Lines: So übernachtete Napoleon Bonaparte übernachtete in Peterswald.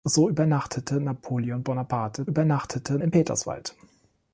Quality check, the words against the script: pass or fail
pass